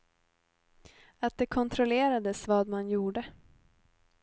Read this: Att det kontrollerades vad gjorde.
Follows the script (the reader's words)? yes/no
no